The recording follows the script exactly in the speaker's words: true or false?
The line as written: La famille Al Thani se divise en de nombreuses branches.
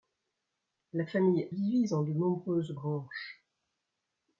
false